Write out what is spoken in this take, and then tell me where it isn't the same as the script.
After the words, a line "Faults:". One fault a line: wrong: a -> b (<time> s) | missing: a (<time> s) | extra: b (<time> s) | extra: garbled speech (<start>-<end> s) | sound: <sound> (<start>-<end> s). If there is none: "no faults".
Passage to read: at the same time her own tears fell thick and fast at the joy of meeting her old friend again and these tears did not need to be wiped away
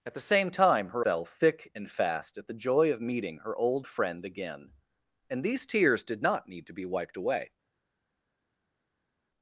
at the same time her fell thick and fast at the joy of meeting her old friend again and these tears did not need to be wiped away
Faults:
missing: own tears (1.1 s)